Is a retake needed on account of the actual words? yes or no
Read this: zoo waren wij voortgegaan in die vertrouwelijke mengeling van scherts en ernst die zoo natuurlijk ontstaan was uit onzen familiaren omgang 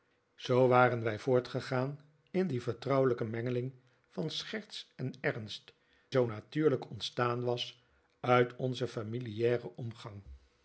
yes